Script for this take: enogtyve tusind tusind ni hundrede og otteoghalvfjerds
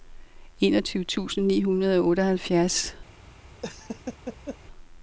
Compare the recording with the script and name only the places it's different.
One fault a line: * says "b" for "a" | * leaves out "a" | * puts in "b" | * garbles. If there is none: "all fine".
* leaves out "tusind"